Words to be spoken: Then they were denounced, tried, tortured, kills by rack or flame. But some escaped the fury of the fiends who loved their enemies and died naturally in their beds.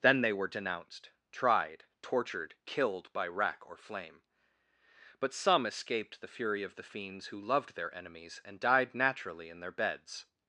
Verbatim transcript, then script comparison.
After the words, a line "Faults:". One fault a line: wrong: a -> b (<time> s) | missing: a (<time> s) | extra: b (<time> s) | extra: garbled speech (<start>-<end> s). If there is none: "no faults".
Then they were denounced, tried, tortured, killed by rack or flame. But some escaped the fury of the fiends who loved their enemies and died naturally in their beds.
Faults:
wrong: kills -> killed (2.7 s)